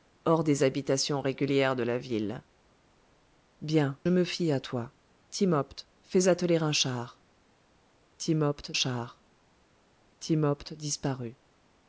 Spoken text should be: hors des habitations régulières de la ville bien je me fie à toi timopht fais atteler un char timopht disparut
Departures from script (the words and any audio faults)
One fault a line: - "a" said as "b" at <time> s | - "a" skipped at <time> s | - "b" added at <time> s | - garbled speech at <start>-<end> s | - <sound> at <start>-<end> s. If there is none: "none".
- "je" skipped at 4.0 s
- "char timopht" added at 8.7 s